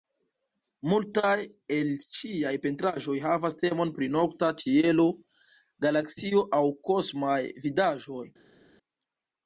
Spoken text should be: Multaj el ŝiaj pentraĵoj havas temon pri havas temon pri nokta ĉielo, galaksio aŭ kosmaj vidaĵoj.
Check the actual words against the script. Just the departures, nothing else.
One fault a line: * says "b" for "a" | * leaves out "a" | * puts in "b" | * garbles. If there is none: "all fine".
* leaves out "havas temon pri"